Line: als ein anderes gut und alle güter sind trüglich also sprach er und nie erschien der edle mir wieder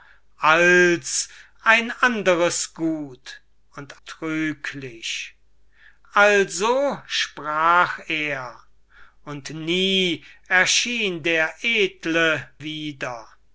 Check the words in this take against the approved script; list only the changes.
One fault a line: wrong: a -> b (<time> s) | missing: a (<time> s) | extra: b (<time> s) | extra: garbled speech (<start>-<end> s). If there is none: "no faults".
missing: alle güter sind (4.0 s)
missing: mir (12.5 s)